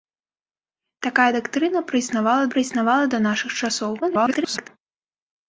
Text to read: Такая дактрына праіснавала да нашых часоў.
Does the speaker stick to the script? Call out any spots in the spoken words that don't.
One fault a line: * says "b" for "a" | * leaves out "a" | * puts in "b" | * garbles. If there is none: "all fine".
* puts in "праіснавала"
* garbles